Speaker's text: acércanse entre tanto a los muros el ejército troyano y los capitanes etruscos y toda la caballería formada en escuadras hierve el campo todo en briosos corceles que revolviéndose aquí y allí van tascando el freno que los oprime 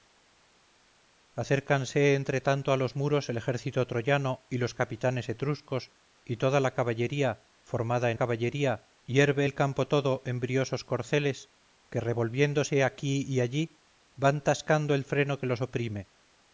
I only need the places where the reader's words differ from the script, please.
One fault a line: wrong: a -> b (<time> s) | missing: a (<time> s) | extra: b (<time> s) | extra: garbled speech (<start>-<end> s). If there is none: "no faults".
wrong: escuadras -> caballería (8.2 s)